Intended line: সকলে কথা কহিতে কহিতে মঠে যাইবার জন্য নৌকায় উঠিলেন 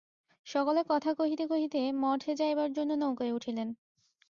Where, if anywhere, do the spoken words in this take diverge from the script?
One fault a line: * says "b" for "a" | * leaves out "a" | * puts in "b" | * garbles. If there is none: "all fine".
all fine